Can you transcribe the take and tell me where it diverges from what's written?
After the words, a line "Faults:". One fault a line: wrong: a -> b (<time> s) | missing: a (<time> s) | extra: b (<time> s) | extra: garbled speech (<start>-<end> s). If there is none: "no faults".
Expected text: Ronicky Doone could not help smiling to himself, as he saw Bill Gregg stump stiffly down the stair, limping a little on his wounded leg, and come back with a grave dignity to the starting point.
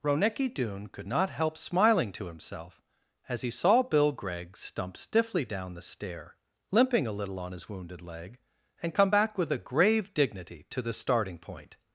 Ronicky Doone could not help smiling to himself, as he saw Bill Gregg stump stiffly down the stair, limping a little on his wounded leg, and come back with a grave dignity to the starting point.
Faults:
no faults